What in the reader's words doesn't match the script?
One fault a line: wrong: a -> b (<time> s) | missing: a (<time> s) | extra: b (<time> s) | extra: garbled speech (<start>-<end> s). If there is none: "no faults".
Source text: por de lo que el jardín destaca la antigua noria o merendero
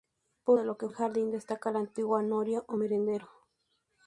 no faults